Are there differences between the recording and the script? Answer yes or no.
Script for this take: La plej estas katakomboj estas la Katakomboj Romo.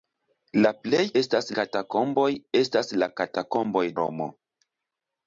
no